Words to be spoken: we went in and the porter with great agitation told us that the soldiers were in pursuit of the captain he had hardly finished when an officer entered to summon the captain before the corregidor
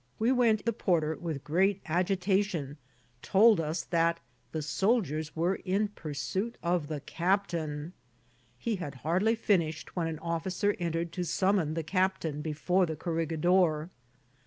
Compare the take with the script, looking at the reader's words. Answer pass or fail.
fail